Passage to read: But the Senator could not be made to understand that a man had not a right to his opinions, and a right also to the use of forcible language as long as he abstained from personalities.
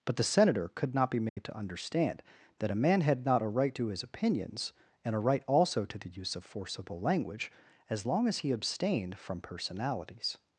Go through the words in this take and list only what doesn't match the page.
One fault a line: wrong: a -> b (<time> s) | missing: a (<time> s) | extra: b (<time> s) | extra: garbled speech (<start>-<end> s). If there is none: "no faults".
no faults